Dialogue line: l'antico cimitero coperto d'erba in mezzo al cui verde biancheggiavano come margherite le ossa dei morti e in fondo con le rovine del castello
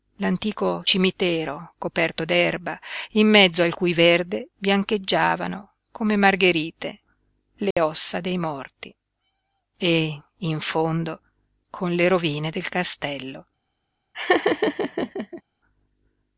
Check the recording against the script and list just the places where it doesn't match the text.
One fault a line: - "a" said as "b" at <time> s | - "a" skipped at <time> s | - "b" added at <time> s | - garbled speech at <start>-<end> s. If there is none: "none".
none